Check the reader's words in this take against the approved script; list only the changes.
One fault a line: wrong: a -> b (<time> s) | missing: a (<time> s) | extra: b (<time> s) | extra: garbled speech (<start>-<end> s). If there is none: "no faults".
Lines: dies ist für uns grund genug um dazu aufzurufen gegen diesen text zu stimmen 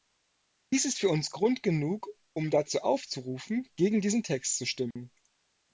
no faults